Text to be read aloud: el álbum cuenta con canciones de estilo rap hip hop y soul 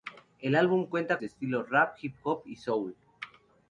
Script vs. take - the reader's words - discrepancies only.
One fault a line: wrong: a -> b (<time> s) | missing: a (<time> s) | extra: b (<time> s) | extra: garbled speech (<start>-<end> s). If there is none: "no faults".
missing: con canciones (1.2 s)